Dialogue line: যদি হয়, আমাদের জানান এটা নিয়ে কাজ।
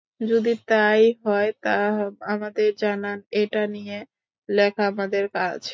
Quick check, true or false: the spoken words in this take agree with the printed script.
false